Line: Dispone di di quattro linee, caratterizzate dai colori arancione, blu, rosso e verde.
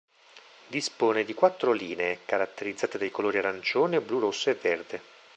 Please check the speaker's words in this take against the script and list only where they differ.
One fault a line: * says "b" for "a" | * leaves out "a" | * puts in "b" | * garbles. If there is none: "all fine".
* leaves out "di"